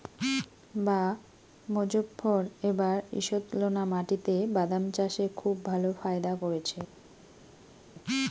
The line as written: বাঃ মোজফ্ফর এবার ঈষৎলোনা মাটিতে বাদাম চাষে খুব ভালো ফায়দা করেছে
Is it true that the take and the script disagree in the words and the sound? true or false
false